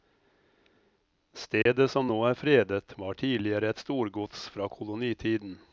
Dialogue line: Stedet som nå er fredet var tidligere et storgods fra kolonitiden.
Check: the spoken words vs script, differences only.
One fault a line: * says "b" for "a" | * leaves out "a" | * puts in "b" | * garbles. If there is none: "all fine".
all fine